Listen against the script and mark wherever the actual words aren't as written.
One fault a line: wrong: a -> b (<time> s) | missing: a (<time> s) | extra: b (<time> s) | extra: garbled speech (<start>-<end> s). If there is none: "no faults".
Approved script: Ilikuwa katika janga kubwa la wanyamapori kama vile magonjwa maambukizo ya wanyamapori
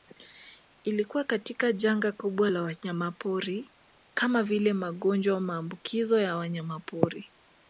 no faults